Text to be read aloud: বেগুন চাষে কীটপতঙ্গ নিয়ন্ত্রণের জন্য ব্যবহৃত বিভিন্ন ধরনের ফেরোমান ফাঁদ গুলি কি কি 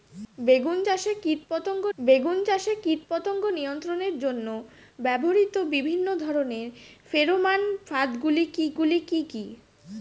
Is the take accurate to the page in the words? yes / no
no